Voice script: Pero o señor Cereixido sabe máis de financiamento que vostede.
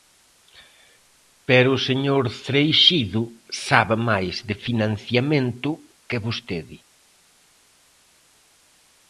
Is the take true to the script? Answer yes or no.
yes